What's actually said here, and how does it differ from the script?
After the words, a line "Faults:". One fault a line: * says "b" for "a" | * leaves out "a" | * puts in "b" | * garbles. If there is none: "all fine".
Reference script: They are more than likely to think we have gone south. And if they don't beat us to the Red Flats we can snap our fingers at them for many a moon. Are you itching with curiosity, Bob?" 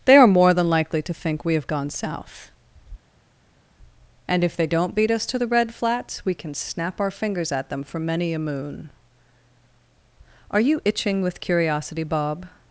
They are more than likely to think we have gone south. And if they don't beat us to the Red Flats we can snap our fingers at them for many a moon. Are you itching with curiosity, Bob?"
Faults:
all fine